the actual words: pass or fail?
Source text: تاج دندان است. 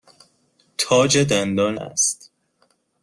pass